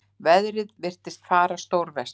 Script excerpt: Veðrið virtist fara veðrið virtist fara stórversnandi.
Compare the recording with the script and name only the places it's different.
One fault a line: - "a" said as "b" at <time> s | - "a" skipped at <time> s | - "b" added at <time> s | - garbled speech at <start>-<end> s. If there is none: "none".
- "veðrið virtist fara" skipped at 1.6 s